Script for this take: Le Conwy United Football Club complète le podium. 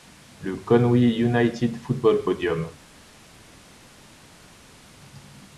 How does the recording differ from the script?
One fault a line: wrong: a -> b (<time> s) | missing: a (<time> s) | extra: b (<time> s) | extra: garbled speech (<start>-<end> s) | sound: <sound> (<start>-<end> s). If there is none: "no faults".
missing: Club complète le (2.2 s)